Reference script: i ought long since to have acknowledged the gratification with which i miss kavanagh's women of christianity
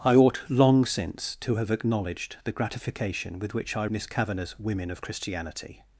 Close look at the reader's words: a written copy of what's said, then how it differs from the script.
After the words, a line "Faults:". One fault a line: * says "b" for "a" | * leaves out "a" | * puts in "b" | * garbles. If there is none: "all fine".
i ought long since to have acknowledged the gratification with which i miss kavanagh's women of christianity
Faults:
all fine